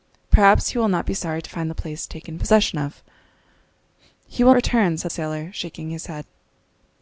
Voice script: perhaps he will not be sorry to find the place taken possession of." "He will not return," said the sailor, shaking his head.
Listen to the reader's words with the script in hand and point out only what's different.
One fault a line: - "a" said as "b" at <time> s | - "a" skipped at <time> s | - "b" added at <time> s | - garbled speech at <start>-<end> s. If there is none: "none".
- "not" skipped at 4.5 s
- "the" skipped at 5.1 s